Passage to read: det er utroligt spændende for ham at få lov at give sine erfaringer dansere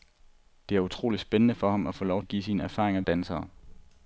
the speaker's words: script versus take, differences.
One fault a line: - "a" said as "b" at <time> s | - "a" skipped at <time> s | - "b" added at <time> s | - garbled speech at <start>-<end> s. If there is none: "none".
none